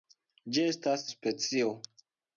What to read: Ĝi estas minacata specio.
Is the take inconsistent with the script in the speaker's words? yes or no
yes